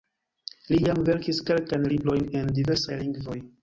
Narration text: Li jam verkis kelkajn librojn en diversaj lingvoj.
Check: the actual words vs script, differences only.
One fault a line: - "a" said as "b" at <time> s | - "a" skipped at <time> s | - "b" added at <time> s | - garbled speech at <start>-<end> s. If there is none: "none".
none